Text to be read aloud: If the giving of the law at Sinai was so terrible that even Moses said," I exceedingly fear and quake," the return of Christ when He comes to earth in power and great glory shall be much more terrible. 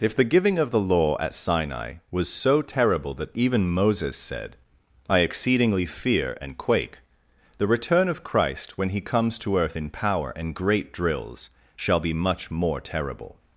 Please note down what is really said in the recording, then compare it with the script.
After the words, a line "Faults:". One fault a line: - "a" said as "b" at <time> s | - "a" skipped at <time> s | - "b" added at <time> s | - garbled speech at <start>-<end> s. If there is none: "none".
If the giving of the law at Sinai was so terrible that even Moses said," I exceedingly fear and quake," the return of Christ when He comes to earth in power and great drills shall be much more terrible.
Faults:
- "glory" said as "drills" at 10.9 s